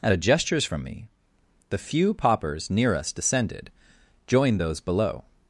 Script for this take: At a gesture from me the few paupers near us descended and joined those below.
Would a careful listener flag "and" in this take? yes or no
yes